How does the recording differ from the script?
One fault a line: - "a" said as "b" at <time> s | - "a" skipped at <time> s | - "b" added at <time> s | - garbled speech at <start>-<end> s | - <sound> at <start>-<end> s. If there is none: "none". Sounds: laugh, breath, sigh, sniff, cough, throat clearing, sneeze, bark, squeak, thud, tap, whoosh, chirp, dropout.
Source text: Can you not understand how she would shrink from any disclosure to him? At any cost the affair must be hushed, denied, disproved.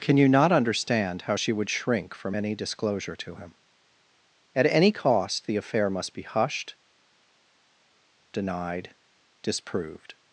none